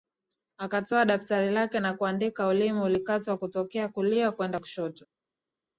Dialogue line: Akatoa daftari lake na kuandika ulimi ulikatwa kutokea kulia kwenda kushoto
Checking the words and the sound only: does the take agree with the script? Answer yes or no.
yes